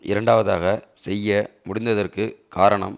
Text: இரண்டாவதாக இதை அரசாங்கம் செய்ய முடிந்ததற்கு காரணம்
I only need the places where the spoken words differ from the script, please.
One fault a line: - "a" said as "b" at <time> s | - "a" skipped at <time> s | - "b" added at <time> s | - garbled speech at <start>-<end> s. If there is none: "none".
- "இதை அரசாங்கம்" skipped at 0.7 s